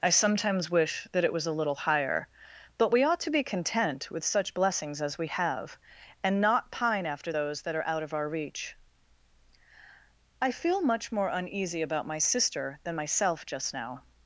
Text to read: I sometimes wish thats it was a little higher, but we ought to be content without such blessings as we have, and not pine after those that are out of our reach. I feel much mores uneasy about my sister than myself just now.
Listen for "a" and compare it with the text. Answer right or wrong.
right